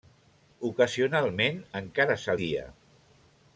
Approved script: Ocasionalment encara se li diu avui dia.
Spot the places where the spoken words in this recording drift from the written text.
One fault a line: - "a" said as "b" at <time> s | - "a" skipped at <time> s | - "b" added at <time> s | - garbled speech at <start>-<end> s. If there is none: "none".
- "li diu avui" skipped at 2.4 s